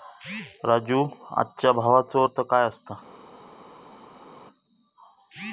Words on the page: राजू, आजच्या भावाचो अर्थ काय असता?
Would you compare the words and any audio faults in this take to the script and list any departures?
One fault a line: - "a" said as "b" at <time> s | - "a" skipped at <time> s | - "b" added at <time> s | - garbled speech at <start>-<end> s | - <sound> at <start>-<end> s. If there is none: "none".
none